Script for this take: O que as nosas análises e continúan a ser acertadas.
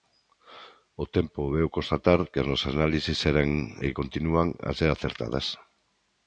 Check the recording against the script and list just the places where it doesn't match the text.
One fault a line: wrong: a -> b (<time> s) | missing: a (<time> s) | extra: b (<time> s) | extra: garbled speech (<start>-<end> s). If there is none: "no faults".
extra: tempo veu constatar (1.1 s)
extra: eran (3.3 s)